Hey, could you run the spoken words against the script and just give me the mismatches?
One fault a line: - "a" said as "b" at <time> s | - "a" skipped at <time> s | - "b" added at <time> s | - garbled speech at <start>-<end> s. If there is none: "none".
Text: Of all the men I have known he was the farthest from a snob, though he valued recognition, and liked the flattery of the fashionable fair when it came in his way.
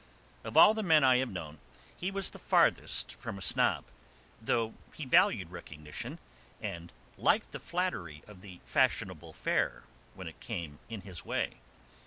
none